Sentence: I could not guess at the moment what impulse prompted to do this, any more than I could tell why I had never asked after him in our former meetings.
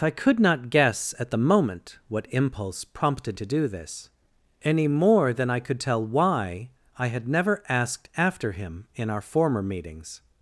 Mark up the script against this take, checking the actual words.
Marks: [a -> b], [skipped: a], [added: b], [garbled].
I could not guess at the moment what impulse prompted to do this, any more than I could tell why I had never asked after him in our former meetings.